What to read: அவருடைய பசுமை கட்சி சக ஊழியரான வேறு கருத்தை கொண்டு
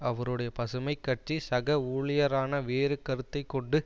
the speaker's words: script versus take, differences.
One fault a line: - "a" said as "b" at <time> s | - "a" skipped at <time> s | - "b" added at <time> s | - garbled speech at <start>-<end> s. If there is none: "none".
none